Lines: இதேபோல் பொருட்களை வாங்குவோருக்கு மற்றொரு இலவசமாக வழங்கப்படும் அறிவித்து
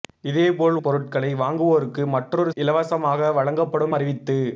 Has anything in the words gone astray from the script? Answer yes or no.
no